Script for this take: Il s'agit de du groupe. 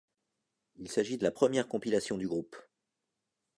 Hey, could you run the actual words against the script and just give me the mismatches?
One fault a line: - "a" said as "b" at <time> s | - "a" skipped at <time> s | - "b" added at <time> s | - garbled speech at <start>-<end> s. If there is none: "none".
- "la première compilation" added at 1.2 s